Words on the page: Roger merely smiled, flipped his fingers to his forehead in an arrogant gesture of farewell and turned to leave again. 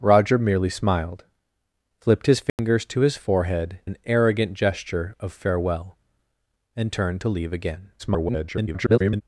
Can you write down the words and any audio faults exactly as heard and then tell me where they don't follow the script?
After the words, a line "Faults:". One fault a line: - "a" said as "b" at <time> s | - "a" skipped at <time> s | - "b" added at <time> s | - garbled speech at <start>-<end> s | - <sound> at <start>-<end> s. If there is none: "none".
Roger merely smiled, flipped his fingers to his forehead an arrogant gesture of farewell and turned to leave again. [garbled]
Faults:
- dropout at 2.5-2.6 s
- "in" skipped at 3.8 s
- garbled speech at 8.0-9.2 s